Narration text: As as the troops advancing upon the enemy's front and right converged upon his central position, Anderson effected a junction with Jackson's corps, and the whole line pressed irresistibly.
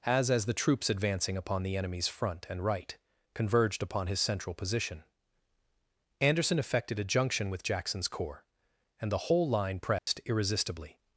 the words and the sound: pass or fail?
fail